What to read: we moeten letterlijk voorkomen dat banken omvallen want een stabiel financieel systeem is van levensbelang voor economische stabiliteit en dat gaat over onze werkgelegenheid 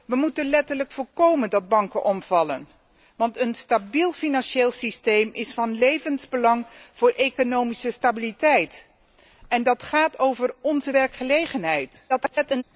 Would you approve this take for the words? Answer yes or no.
no